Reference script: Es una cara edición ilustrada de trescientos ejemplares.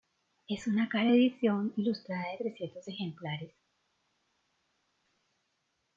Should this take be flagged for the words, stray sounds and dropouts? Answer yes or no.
no